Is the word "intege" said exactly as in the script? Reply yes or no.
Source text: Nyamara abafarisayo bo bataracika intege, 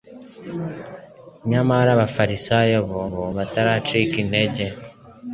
yes